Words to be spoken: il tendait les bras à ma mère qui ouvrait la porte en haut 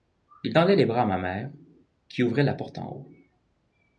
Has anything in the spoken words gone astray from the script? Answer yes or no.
no